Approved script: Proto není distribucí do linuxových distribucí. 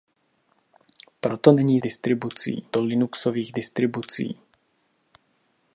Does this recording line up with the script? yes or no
yes